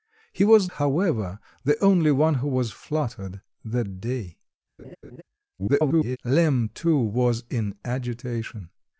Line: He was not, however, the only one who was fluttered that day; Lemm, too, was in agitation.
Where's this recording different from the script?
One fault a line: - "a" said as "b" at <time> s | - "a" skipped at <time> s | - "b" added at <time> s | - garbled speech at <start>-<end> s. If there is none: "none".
- "not" skipped at 0.7 s
- garbled speech at 5.6-6.2 s